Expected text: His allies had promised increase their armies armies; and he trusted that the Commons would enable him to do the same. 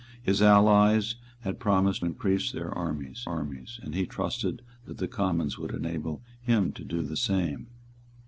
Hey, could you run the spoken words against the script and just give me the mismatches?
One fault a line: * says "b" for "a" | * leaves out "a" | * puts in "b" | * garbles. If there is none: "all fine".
all fine